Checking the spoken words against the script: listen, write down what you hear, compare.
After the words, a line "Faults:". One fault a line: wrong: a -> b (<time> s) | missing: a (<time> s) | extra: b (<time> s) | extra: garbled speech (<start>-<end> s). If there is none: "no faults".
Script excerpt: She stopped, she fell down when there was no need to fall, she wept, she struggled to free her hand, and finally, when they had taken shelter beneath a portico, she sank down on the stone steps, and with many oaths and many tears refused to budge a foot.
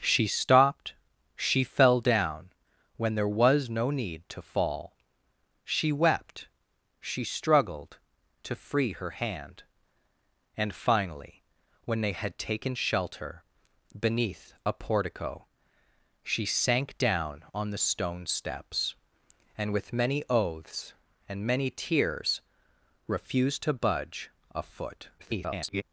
She stopped, she fell down when there was no need to fall, she wept, she struggled to free her hand, and finally, when they had taken shelter beneath a portico, she sank down on the stone steps, and with many oaths and many tears refused to budge a foot. [garbled]
Faults:
extra: garbled speech (25.2-25.8 s)